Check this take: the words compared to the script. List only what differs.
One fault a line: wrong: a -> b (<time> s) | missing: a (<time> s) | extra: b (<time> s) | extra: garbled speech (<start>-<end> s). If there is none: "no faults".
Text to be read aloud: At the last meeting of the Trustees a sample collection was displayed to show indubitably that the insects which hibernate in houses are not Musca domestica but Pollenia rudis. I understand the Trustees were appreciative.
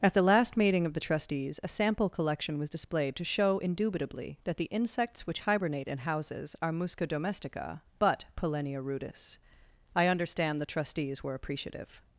missing: not (6.7 s)